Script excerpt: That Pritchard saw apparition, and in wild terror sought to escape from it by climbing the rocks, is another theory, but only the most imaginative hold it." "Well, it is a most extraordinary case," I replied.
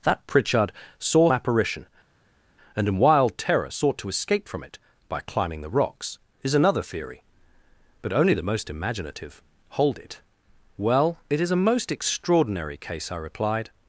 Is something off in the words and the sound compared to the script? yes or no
no